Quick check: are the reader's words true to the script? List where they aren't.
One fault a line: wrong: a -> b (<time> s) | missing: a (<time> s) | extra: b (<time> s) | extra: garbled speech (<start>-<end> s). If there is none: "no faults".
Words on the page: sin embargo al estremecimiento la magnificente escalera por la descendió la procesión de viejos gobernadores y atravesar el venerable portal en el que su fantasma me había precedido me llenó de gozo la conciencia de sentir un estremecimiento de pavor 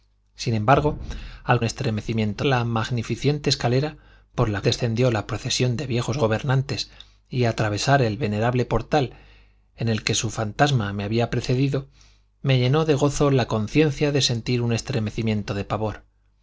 no faults